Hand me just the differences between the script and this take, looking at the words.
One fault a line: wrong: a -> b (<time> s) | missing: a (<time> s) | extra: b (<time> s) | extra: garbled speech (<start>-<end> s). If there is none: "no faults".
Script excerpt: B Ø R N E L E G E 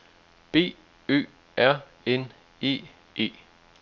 missing: L E G (2.8 s)